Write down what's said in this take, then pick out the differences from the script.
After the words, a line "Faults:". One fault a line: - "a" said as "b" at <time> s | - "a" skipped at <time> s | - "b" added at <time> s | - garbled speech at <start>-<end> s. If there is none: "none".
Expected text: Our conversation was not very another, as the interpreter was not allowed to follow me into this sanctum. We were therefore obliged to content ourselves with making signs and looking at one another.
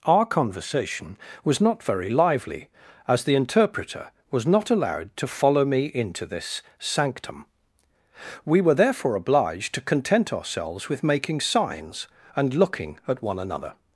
Our conversation was not very lively, as the interpreter was not allowed to follow me into this sanctum. We were therefore obliged to content ourselves with making signs and looking at one another.
Faults:
- "another" said as "lively" at 2.1 s